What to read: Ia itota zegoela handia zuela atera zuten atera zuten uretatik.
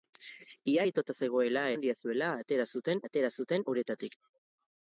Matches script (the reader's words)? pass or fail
pass